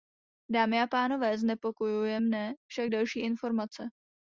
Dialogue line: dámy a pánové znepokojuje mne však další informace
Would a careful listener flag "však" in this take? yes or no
no